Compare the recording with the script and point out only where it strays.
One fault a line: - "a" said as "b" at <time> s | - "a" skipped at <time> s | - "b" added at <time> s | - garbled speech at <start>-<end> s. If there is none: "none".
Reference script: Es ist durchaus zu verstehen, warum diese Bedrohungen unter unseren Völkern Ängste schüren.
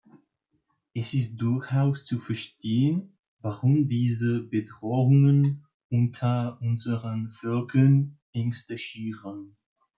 none